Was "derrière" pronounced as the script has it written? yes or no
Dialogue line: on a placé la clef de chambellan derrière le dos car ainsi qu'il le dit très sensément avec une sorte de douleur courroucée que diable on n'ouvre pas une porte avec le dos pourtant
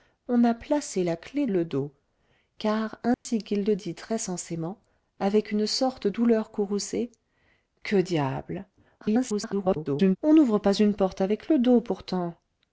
no